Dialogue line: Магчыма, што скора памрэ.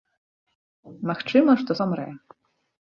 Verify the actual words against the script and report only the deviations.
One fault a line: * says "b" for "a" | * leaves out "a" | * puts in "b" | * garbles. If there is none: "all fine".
* leaves out "скора"